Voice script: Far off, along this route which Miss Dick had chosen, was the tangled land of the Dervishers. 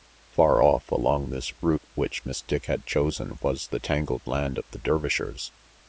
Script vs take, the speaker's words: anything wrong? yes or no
no